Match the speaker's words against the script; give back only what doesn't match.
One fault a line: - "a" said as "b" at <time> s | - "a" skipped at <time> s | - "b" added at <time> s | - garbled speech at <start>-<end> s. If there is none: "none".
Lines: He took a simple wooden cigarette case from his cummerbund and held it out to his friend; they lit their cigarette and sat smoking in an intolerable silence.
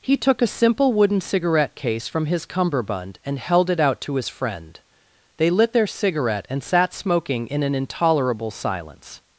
none